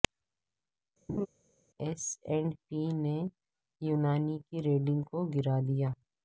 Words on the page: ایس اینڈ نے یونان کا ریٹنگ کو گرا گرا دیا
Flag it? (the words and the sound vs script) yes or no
yes